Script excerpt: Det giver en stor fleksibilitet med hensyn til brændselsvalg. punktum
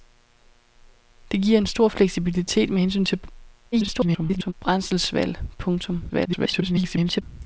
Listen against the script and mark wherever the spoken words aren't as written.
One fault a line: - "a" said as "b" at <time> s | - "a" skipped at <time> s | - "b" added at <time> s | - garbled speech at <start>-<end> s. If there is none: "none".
- garbled speech at 3.7-4.5 s
- garbled speech at 6.1-7.2 s